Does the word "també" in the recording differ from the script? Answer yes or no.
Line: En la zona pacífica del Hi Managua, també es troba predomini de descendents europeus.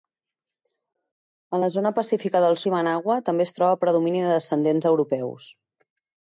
no